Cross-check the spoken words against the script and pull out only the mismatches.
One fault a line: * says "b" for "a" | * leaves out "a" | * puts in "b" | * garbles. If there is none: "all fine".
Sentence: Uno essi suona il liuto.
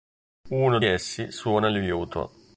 all fine